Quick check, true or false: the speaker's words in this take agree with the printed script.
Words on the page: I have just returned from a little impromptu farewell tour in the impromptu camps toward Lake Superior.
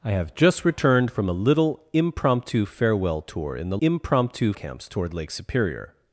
true